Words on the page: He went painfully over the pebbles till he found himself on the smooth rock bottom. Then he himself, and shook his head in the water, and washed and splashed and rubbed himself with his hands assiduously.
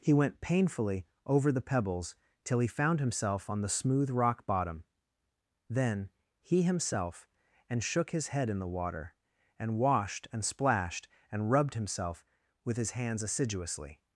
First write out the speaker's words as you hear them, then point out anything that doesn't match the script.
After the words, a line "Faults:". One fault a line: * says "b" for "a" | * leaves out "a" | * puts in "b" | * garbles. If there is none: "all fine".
He went painfully over the pebbles till he found himself on the smooth rock bottom. Then he himself, and shook his head in the water, and washed and splashed and rubbed himself with his hands assiduously.
Faults:
all fine